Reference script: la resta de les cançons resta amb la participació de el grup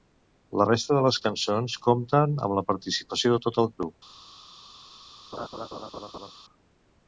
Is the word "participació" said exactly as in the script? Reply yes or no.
yes